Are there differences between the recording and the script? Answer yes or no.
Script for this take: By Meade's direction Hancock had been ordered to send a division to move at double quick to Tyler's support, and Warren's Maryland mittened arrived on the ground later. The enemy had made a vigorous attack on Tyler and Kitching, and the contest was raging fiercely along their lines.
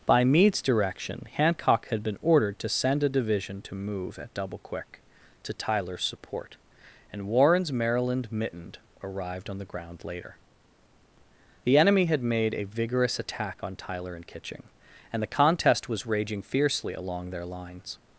no